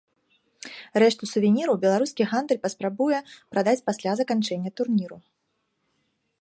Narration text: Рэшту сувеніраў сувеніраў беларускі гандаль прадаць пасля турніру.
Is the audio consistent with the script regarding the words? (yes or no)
no